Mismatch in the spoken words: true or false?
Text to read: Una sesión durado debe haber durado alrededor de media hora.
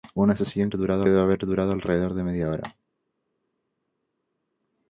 false